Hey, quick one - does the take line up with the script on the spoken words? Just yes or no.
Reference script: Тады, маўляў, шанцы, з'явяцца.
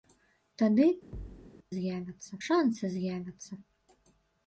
no